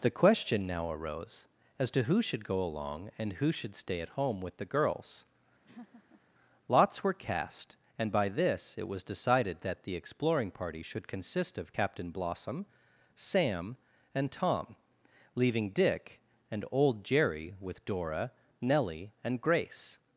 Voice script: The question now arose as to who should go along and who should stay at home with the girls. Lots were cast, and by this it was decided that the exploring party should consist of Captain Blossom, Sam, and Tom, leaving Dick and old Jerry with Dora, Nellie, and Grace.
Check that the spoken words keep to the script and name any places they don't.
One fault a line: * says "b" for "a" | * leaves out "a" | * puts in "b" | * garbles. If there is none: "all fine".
all fine